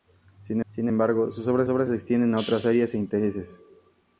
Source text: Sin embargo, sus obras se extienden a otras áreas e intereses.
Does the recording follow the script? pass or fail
fail